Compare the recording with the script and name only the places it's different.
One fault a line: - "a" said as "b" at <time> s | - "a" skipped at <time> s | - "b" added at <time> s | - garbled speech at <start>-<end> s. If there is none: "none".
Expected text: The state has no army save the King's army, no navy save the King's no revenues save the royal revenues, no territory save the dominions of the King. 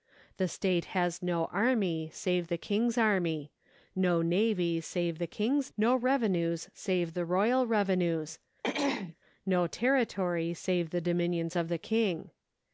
none